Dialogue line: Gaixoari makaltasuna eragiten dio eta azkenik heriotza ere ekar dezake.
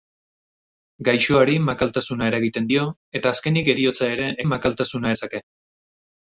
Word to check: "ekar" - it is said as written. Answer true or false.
false